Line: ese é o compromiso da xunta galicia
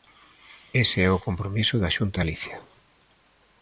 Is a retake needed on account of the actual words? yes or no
no